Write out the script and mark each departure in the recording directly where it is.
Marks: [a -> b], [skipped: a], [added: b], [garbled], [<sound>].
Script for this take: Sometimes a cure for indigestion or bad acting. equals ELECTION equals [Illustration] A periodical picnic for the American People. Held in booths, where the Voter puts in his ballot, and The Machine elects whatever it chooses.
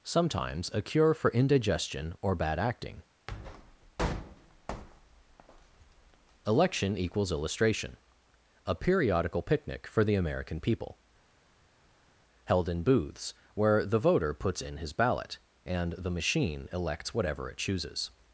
Sometimes a cure for indigestion or bad acting. [skipped: equals] ELECTION equals [Illustration] A periodical picnic for the American People. Held in booths, where the Voter puts in his ballot, and The Machine elects whatever it chooses.